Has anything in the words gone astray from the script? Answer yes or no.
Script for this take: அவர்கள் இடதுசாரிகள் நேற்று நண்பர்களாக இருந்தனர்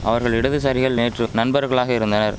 no